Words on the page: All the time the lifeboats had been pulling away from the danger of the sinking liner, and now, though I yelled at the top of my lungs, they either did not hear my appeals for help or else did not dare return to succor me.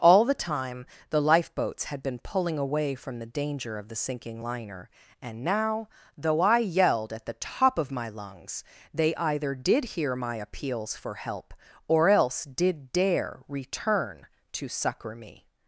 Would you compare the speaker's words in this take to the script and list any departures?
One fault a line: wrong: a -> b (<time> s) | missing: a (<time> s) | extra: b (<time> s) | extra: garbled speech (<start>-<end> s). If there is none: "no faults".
missing: not (9.8 s)
missing: not (12.9 s)